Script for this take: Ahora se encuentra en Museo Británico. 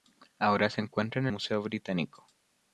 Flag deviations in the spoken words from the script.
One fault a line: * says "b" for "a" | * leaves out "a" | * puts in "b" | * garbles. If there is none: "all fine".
all fine